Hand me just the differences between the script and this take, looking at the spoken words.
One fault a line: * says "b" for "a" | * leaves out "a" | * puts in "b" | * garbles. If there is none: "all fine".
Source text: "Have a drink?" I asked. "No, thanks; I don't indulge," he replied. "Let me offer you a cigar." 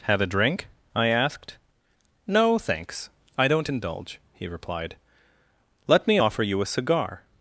all fine